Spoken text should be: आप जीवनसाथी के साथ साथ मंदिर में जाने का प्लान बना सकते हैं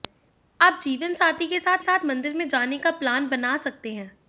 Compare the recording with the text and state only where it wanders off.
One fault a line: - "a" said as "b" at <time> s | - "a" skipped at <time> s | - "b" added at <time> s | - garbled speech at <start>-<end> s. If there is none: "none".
none